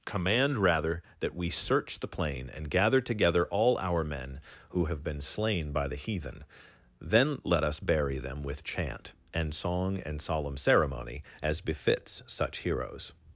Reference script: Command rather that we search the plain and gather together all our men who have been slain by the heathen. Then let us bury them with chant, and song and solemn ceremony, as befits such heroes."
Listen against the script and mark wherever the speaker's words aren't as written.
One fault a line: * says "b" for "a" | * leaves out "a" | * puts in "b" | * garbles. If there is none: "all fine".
all fine